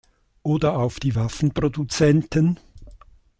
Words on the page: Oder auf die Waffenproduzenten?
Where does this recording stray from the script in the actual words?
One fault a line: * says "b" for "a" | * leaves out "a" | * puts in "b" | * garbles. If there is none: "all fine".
all fine